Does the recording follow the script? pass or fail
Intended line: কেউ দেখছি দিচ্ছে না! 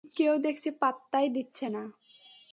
fail